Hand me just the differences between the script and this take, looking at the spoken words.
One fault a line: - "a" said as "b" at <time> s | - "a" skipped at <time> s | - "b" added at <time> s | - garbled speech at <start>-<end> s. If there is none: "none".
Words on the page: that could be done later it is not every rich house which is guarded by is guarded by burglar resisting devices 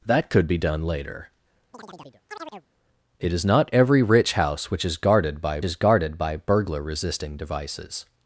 none